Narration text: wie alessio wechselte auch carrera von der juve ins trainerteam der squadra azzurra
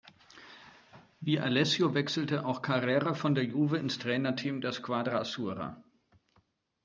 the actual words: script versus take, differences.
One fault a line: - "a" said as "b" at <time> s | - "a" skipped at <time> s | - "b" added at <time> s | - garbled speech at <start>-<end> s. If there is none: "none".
none